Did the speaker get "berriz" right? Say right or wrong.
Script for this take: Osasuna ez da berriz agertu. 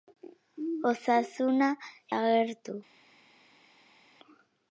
wrong